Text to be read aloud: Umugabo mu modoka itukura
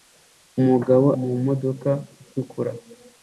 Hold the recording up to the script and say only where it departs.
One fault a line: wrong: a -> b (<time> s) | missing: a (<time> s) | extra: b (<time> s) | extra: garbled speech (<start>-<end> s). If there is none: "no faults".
no faults